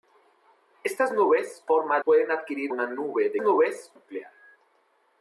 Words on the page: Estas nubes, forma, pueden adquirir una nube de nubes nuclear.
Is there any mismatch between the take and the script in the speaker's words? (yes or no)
no